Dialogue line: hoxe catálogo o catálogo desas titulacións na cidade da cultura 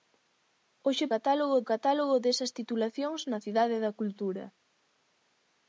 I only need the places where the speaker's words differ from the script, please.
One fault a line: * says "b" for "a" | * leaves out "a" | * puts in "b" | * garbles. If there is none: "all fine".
all fine